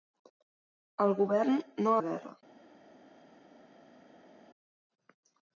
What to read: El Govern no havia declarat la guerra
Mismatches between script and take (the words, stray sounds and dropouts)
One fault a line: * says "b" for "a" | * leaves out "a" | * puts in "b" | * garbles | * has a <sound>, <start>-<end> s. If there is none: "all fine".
* leaves out "havia declarat"